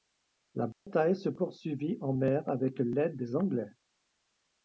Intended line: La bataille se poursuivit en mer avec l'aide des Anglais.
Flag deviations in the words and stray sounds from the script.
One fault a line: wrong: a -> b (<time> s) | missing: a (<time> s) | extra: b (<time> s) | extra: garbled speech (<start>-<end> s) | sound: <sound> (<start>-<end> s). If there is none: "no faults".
sound: dropout (0.7-0.9 s)